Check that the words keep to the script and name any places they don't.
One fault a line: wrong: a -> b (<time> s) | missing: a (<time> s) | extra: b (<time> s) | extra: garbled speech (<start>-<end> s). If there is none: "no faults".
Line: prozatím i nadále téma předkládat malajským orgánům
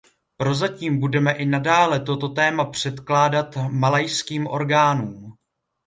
extra: budeme (1.0 s)
extra: toto (2.0 s)